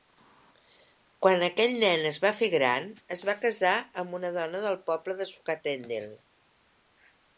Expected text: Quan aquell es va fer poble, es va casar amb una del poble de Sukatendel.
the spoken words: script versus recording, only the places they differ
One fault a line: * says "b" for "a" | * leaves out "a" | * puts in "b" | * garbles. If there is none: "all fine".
* puts in "nen"
* says "gran" for "poble"
* puts in "dona"